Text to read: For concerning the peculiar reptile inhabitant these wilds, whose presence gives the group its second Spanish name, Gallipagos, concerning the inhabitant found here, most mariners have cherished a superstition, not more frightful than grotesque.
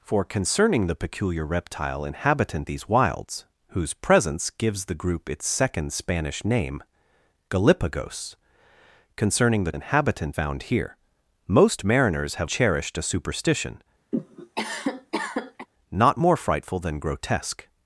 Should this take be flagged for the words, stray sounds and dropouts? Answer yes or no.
yes